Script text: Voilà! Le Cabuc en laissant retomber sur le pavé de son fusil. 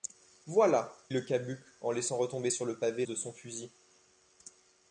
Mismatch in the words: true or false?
false